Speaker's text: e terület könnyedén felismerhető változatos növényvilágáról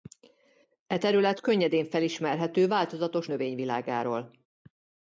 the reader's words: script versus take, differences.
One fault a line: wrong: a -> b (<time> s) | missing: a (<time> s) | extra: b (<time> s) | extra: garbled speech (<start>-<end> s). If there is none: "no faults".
no faults